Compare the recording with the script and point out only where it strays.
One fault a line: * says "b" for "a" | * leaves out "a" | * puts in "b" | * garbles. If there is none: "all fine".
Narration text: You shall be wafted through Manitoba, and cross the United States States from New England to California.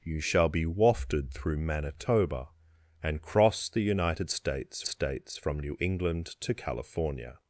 all fine